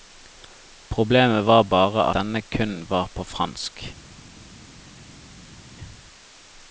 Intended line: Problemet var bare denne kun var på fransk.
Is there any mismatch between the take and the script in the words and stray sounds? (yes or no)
no